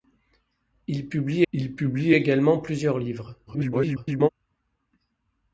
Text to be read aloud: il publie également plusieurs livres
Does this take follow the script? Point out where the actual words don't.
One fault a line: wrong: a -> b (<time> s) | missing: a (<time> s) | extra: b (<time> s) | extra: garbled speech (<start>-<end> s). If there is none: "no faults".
extra: il publie (1.5 s)
extra: garbled speech (3.5-4.3 s)